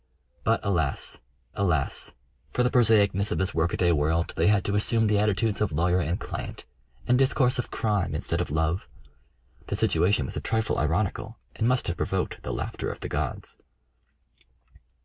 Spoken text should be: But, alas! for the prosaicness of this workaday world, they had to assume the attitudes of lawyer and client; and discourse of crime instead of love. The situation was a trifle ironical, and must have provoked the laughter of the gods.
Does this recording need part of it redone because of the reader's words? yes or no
yes